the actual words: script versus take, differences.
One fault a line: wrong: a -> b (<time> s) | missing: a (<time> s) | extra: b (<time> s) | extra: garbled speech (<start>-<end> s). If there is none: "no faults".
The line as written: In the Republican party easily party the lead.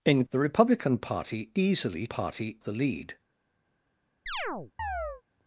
no faults